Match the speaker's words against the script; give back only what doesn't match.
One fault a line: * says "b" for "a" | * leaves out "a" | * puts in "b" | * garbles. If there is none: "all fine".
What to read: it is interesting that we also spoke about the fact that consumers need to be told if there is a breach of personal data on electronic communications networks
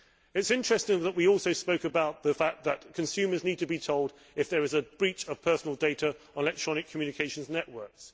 all fine